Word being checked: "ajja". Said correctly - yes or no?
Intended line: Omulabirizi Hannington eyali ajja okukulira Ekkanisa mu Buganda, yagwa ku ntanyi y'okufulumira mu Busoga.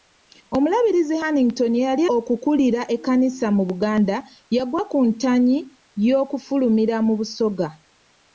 no